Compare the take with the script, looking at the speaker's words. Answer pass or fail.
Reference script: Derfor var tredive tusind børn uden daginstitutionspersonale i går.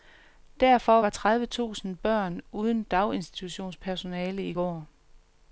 pass